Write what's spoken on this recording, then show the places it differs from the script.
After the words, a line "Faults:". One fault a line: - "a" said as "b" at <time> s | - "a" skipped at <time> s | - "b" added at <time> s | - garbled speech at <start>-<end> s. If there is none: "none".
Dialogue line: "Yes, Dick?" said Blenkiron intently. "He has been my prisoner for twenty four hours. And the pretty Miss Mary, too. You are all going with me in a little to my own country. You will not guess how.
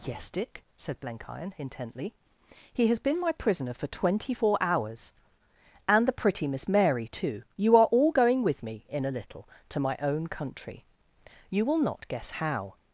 "Yes, Dick?" said Blenkiron intently. "He has been my prisoner for twenty four hours. And the pretty Miss Mary, too. You are all going with me in a little to my own country. You will not guess how.
Faults:
none